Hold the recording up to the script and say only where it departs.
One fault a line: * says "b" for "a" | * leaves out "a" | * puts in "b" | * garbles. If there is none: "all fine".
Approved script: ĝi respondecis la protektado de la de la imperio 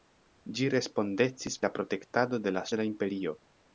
all fine